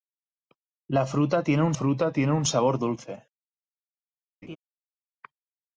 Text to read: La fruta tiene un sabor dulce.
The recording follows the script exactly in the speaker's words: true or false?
false